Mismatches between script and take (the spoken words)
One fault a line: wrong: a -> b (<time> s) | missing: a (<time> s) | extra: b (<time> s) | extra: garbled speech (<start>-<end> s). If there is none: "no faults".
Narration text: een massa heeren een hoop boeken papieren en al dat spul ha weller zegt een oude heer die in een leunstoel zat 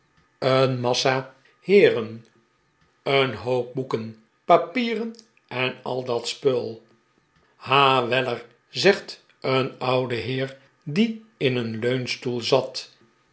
no faults